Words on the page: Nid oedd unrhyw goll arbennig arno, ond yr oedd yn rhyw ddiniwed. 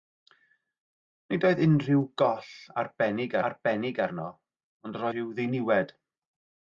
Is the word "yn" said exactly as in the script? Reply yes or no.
no